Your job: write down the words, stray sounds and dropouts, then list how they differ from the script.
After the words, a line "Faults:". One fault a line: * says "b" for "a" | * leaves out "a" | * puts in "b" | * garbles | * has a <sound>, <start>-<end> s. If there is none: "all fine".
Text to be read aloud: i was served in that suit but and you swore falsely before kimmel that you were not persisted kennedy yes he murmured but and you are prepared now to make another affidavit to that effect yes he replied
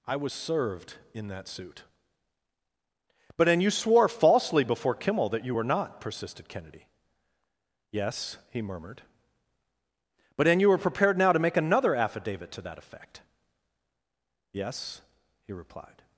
i was served in that suit but and you swore falsely before kimmel that you were not persisted kennedy yes he murmured but and you were prepared now to make another affidavit to that effect yes he replied
Faults:
* says "were" for "are"